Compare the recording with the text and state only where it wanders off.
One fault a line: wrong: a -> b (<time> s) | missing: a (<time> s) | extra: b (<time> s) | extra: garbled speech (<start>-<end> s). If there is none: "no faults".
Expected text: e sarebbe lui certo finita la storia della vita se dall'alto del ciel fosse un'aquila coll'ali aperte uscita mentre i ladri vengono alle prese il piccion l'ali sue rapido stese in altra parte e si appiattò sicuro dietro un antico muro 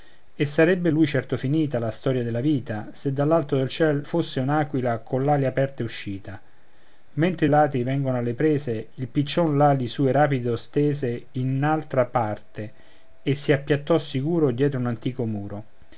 no faults